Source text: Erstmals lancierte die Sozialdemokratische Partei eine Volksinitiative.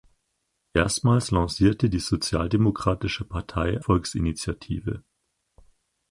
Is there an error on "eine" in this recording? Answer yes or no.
yes